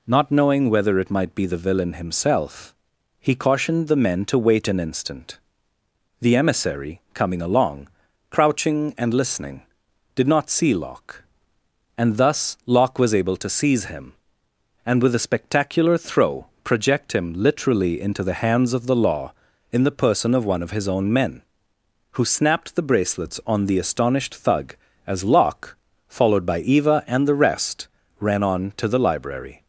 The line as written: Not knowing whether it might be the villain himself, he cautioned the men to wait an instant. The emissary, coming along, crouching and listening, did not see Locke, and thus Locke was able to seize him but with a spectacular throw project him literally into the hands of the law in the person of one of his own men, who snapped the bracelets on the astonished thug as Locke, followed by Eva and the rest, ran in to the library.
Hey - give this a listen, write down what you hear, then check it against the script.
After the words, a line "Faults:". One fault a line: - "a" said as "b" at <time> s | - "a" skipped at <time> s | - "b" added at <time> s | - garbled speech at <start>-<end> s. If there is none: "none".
Not knowing whether it might be the villain himself, he cautioned the men to wait an instant. The emissary, coming along, crouching and listening, did not see Locke, and thus Locke was able to seize him and with a spectacular throw project him literally into the hands of the law in the person of one of his own men, who snapped the bracelets on the astonished thug as Locke, followed by Eva and the rest, ran on to the library.
Faults:
- "but" said as "and" at 14.8 s
- "in" said as "on" at 28.4 s